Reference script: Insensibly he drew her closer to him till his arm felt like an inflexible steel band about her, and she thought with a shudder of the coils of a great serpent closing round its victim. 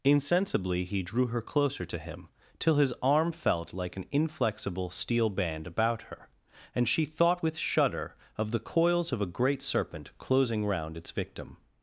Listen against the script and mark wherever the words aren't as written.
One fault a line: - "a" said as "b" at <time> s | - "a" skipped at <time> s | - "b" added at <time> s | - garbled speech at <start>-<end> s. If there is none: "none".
- "a" skipped at 7.6 s